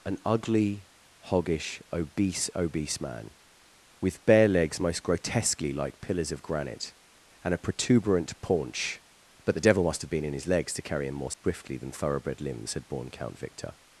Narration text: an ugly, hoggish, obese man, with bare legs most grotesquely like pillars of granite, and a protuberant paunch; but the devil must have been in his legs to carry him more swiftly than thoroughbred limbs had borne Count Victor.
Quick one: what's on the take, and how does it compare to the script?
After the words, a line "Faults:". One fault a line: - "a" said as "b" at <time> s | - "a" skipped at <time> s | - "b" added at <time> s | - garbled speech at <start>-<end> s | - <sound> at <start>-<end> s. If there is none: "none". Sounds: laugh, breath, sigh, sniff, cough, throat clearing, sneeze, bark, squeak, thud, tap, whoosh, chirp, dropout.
an ugly, hoggish, obese obese man, with bare legs most grotesquely like pillars of granite, and a protuberant paunch; but the devil must have been in his legs to carry him more swiftly than thoroughbred limbs had borne Count Victor.
Faults:
- "obese" added at 2.5 s
- dropout at 11.3-11.4 s